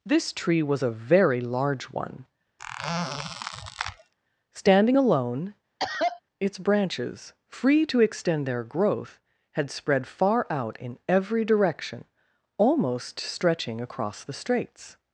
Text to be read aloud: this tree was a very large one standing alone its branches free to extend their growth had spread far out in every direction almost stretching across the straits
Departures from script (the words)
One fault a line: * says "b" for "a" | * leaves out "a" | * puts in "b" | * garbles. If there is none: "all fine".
all fine